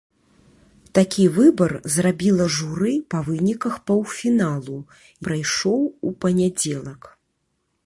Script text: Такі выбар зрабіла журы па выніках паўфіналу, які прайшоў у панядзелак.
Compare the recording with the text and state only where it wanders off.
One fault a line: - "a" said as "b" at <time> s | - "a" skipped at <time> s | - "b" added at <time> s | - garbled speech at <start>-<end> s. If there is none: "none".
- "які" skipped at 4.8 s